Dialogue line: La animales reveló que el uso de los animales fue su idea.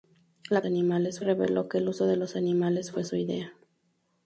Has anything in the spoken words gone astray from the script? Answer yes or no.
no